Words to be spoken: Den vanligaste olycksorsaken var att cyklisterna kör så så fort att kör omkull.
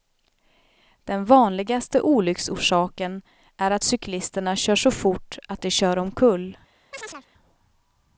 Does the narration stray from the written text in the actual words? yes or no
yes